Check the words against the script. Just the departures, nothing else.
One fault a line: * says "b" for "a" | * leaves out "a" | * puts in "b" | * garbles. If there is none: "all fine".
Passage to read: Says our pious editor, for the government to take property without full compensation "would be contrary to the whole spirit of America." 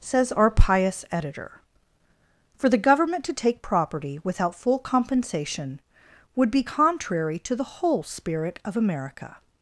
all fine